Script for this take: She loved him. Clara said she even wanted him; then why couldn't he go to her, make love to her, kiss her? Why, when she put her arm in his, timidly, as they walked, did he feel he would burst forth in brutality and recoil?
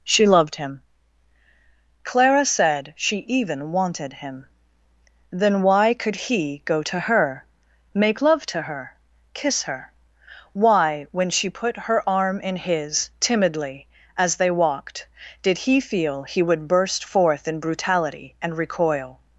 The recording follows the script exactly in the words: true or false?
false